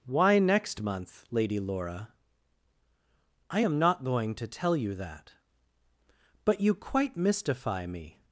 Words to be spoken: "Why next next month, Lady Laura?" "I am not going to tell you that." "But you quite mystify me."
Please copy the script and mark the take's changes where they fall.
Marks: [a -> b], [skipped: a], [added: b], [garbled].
"Why next [skipped: next] month, Lady Laura?" "I am not going to tell you that." "But you quite mystify me."